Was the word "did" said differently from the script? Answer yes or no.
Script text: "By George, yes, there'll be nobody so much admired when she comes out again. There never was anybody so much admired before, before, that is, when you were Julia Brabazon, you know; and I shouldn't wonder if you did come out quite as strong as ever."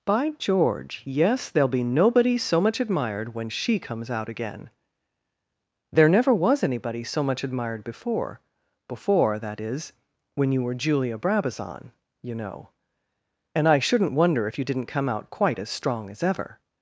yes